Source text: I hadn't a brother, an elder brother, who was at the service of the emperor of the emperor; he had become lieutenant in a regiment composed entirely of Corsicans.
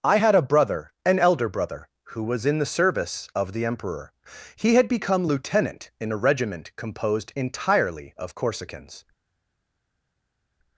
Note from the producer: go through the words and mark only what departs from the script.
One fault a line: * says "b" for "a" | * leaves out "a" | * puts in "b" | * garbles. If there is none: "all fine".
* says "had" for "hadn't"
* says "in" for "at"
* leaves out "of the emperor"